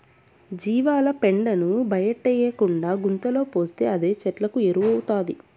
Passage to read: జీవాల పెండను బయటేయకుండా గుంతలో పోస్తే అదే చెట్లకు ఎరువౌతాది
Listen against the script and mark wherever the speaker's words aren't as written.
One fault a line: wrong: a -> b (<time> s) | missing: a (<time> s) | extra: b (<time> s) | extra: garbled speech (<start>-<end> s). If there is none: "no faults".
no faults